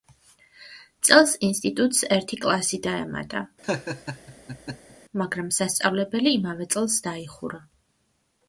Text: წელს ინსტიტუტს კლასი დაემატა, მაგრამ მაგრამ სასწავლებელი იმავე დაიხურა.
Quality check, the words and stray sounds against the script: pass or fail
fail